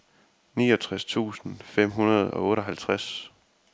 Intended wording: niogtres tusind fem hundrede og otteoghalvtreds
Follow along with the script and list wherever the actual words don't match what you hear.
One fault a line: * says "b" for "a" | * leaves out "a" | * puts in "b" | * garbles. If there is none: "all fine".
all fine